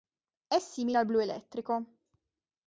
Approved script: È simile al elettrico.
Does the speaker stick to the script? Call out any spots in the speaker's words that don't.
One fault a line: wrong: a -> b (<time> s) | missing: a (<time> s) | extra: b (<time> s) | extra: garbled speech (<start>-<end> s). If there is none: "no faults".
extra: blu (1.0 s)